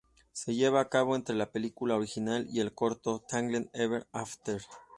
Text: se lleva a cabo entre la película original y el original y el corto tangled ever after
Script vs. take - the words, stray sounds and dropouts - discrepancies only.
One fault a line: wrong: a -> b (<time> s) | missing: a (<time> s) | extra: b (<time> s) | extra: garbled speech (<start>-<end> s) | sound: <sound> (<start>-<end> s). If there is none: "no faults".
missing: original y el (2.7 s)